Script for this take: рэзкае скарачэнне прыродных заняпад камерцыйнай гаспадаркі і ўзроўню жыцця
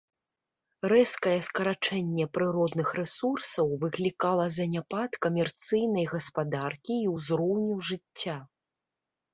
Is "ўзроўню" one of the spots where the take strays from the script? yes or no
no